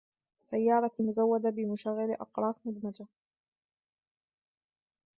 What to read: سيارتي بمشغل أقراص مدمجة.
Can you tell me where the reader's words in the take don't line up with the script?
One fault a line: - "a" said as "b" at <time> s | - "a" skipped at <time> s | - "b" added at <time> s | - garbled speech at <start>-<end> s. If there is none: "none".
- "مزودة" added at 1.0 s